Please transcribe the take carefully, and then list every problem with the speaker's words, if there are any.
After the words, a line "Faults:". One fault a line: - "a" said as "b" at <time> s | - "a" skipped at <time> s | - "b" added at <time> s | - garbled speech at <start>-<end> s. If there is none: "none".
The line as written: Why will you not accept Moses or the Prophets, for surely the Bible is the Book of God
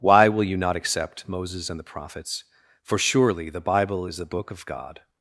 Why will you not accept Moses and the Prophets, for surely the Bible is the Book of God
Faults:
- "or" said as "and" at 1.7 s